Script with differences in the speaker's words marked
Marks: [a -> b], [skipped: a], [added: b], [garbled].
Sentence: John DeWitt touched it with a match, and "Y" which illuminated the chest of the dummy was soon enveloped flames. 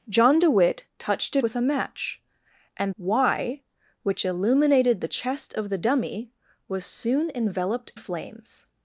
John DeWitt touched it with a match, and "Y" which illuminated the chest of the dummy was soon enveloped flames.